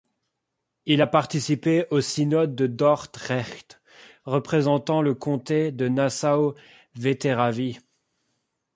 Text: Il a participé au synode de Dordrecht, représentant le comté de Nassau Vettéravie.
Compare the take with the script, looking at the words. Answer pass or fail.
pass